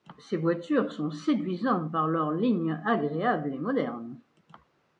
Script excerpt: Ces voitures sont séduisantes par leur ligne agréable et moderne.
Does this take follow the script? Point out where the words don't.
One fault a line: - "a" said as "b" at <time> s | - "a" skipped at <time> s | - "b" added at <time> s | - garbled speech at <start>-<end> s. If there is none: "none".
none